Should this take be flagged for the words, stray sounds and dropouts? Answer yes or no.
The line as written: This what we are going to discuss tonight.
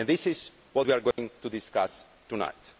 yes